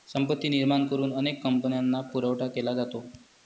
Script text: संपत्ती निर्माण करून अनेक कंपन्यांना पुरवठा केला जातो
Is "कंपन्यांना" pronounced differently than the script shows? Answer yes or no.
no